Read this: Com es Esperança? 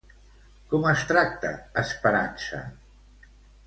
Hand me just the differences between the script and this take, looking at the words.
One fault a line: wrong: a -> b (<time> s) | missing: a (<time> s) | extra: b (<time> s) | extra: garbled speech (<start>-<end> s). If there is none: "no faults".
extra: tracta (1.1 s)